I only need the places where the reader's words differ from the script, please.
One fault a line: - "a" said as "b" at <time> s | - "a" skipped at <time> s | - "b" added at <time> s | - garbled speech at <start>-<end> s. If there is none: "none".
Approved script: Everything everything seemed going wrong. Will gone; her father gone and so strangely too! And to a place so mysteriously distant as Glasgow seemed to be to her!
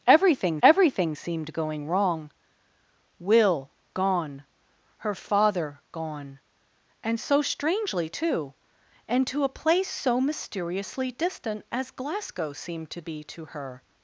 none